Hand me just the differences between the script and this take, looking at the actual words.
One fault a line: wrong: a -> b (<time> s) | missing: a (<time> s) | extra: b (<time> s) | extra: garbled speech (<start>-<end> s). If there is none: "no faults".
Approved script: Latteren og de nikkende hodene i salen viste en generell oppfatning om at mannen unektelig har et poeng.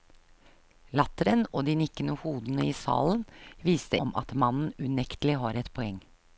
missing: en generell oppfatning (4.0 s)